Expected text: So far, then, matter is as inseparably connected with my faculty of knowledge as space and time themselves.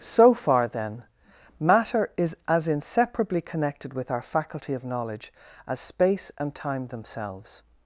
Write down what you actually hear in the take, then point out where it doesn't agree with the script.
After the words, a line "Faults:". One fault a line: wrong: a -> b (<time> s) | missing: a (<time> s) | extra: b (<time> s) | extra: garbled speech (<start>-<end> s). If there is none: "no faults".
So far, then, matter is as inseparably connected with our faculty of knowledge as space and time themselves.
Faults:
wrong: my -> our (4.1 s)